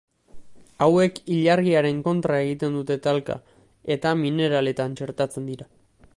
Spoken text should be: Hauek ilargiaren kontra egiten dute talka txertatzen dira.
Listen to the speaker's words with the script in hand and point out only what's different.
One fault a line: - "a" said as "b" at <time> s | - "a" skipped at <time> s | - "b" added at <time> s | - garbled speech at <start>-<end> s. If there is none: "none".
- "eta mineraletan" added at 4.0 s